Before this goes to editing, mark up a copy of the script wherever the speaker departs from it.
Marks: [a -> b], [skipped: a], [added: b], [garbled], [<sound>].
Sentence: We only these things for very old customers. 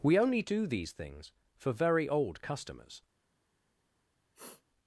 We only [added: do] these things for very old customers. [sniff]